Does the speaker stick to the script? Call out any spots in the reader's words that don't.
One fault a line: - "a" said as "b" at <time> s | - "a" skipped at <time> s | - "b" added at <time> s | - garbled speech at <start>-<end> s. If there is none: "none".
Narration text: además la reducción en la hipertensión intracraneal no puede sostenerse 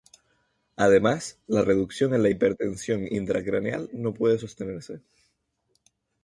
none